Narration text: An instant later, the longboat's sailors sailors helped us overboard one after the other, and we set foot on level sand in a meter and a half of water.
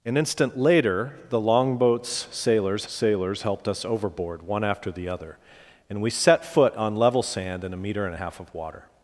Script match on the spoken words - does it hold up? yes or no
yes